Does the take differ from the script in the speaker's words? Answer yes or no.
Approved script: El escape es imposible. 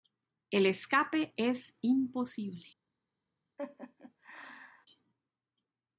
no